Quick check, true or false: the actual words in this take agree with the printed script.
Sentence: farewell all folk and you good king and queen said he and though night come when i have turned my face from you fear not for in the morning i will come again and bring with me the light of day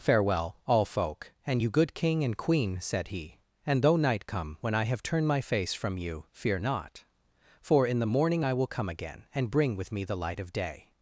true